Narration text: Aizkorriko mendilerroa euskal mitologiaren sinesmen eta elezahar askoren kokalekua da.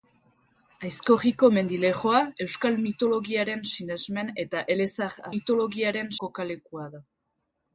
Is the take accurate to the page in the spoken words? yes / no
no